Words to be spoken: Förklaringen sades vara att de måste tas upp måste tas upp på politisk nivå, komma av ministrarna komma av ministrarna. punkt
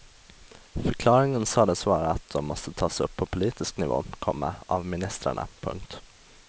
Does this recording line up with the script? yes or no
no